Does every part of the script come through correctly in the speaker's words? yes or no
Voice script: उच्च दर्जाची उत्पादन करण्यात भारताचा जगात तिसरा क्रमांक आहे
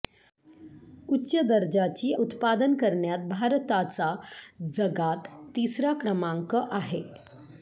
yes